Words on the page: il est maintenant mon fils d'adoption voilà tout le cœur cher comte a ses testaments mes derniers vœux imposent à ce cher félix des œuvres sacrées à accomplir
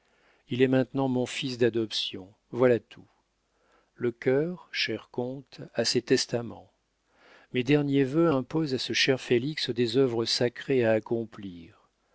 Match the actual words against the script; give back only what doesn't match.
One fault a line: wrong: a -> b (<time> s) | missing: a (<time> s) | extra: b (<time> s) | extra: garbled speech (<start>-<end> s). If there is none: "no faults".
no faults